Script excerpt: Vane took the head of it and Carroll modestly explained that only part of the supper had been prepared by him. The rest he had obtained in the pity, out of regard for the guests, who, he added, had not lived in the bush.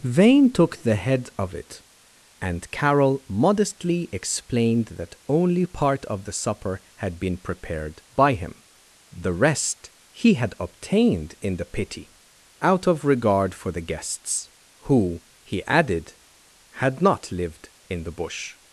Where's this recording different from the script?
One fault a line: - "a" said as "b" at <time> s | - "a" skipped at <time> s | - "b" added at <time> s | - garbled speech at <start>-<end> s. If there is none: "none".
none